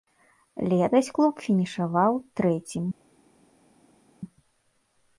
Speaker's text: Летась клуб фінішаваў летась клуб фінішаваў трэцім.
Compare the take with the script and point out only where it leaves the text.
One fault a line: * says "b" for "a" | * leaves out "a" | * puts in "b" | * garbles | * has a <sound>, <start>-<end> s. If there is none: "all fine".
* leaves out "летась клуб фінішаваў"